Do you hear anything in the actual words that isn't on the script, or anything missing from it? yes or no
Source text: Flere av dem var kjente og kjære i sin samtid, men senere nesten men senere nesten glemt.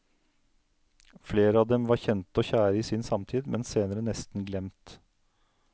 yes